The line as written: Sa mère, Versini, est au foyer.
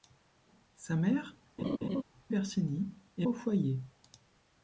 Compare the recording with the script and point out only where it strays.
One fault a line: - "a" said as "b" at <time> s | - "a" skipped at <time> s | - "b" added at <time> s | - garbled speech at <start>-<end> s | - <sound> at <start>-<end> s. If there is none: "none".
- laugh at 1.6-2.0 s